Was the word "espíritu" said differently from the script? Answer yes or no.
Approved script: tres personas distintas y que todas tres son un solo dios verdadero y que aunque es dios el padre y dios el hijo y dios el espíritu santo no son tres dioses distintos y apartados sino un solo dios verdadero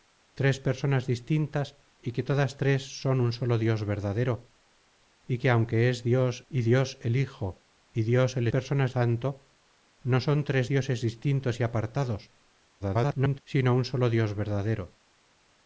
yes